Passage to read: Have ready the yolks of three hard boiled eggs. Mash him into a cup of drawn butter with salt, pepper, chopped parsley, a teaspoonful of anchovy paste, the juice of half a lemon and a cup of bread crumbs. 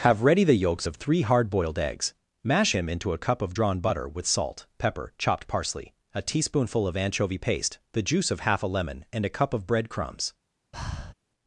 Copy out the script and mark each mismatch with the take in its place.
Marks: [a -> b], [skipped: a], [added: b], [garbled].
Have ready the yolks of three hard boiled eggs. Mash him into a cup of drawn butter with salt, pepper, chopped parsley, a teaspoonful of anchovy paste, the juice of half a lemon and a cup of bread crumbs.